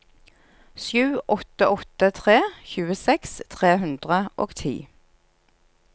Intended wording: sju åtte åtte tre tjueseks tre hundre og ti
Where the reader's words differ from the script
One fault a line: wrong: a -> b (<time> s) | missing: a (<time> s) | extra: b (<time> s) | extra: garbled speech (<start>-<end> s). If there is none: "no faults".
no faults